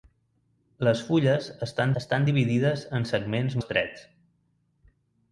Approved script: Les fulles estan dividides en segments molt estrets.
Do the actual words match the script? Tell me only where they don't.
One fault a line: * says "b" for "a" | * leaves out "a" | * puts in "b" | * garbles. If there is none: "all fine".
* puts in "estan"
* leaves out "molt"